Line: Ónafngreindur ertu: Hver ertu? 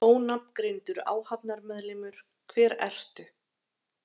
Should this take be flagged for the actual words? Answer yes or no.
yes